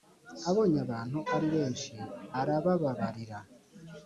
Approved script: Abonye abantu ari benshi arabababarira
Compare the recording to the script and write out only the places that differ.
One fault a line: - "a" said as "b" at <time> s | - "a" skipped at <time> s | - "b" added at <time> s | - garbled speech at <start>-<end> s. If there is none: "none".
none